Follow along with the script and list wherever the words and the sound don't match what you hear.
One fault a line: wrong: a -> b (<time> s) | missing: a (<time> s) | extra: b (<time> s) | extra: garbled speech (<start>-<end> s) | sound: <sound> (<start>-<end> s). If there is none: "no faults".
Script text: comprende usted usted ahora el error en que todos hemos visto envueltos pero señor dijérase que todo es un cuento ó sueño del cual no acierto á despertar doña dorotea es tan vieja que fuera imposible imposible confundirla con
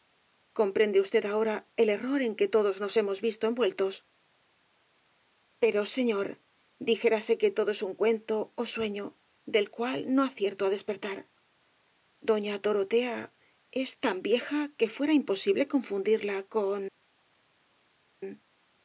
missing: usted (1.2 s)
extra: nos (2.8 s)
missing: imposible (15.6 s)